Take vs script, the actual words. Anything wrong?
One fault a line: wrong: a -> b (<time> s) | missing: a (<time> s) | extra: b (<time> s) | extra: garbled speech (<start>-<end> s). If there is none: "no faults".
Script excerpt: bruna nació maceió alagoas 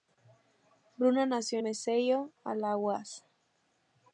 no faults